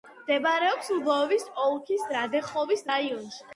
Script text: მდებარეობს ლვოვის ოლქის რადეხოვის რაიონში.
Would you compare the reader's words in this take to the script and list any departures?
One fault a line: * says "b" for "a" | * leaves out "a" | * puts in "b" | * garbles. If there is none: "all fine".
all fine